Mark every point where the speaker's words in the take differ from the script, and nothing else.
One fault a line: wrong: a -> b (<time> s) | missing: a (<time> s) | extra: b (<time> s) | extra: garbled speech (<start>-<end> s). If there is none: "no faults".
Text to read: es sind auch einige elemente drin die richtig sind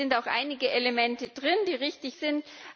no faults